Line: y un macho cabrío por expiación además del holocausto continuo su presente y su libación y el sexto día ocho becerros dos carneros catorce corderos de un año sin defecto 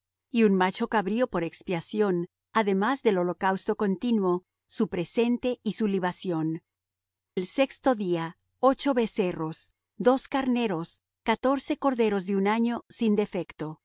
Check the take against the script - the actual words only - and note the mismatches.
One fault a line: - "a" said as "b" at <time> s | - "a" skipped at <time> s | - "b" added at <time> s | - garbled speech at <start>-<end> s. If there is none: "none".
- "y" skipped at 6.6 s